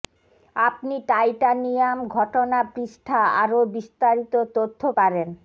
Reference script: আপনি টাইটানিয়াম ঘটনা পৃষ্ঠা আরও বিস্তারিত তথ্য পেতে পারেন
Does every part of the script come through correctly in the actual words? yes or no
no